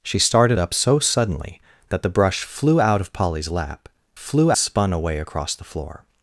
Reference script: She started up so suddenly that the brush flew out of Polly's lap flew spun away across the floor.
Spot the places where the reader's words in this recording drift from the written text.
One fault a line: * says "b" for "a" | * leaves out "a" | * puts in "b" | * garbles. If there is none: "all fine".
all fine